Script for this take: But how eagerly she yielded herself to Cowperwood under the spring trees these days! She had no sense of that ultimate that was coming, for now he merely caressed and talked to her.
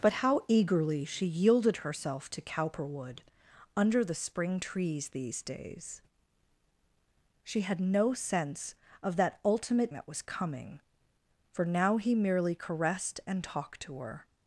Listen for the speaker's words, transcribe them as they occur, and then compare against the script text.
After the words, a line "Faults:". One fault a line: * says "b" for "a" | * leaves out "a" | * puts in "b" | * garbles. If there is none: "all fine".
But how eagerly she yielded herself to Cowperwood under the spring trees these days! She had no sense of that ultimate that was coming, for now he merely caressed and talked to her.
Faults:
all fine